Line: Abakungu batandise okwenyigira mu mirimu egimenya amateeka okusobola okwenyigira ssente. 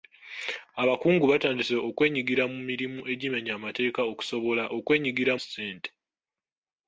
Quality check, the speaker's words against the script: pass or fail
pass